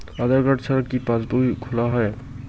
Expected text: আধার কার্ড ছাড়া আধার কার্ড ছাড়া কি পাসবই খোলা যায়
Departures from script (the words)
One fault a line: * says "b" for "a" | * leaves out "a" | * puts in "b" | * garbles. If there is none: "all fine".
* leaves out "আধার কার্ড ছাড়া"